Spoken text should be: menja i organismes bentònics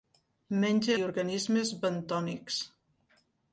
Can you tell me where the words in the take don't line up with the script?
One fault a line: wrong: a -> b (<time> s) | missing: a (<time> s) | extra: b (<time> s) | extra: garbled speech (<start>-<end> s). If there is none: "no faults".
no faults